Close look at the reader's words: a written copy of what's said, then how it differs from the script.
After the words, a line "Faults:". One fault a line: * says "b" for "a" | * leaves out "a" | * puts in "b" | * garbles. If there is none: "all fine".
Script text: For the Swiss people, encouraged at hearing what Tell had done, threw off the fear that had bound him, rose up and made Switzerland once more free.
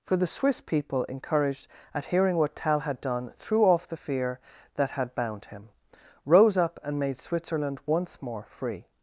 For the Swiss people, encouraged at hearing what Tell had done, threw off the fear that had bound him, rose up and made Switzerland once more free.
Faults:
all fine